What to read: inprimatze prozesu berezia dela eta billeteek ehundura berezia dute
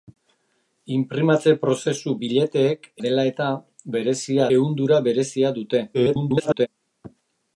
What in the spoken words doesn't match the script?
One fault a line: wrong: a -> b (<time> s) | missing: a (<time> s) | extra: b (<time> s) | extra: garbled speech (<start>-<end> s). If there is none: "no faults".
wrong: berezia -> billeteek (2.2 s)
wrong: billeteek -> berezia (4.0 s)
extra: garbled speech (5.9-6.7 s)